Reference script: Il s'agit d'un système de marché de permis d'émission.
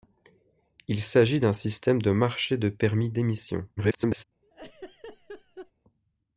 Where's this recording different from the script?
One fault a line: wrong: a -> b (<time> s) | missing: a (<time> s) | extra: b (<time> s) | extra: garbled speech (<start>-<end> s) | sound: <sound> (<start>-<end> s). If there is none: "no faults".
extra: garbled speech (3.8-4.2 s)
sound: laugh (4.4-5.7 s)